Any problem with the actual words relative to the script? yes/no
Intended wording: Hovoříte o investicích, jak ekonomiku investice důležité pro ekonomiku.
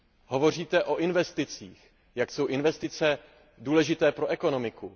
yes